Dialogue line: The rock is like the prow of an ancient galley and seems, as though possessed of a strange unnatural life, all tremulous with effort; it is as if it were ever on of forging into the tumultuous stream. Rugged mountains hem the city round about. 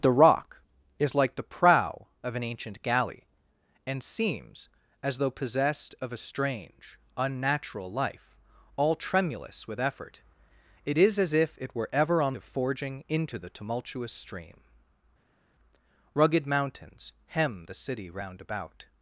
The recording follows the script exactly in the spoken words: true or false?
true